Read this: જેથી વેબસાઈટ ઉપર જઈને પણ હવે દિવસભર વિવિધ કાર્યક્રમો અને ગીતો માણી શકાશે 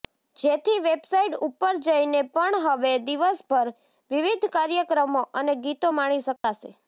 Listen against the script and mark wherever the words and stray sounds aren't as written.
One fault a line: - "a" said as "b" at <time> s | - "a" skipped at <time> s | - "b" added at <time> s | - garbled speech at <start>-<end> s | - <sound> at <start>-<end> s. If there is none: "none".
- dropout at 6.4-6.4 s